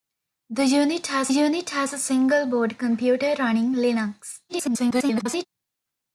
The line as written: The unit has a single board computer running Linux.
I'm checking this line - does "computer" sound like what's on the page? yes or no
yes